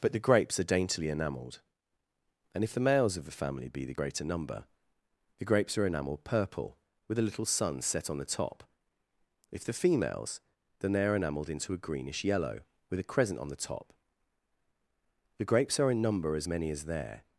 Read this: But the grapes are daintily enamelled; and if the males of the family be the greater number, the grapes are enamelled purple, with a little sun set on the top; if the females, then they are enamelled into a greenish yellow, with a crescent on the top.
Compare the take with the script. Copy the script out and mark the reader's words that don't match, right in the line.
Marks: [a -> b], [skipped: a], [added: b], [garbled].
But the grapes are daintily enamelled; and if the males of the family be the greater number, the grapes are enamelled purple, with a little sun set on the top; if the females, then they are enamelled into a greenish yellow, with a crescent on the top. [added: The grapes are in number as many as there]